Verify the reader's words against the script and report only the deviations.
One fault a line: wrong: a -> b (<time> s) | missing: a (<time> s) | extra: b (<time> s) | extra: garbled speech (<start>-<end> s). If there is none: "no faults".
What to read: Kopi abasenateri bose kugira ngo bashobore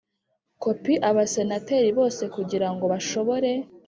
no faults